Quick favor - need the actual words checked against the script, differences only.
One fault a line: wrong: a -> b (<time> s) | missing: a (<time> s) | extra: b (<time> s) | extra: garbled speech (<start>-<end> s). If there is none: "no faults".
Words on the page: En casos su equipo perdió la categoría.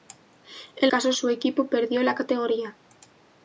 no faults